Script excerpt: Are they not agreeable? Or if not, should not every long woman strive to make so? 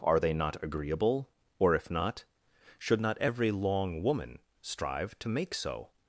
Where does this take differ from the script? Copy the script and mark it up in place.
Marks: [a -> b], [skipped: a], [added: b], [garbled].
Are they not agreeable? Or if not, should not every long woman strive to make so?